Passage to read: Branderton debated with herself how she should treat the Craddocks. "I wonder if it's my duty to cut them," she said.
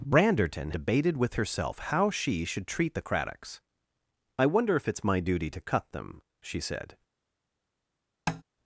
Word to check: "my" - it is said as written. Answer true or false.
true